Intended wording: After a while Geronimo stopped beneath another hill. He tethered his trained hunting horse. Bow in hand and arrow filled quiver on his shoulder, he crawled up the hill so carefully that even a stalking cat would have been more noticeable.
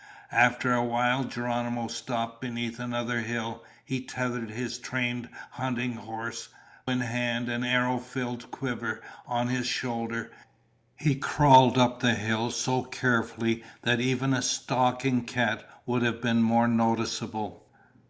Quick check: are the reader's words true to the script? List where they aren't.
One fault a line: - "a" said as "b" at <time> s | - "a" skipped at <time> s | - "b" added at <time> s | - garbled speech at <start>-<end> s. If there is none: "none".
- "Bow" skipped at 6.5 s